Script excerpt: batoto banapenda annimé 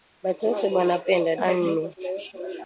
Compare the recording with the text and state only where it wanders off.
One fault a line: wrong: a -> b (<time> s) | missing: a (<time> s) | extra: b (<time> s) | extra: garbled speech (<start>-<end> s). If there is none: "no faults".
no faults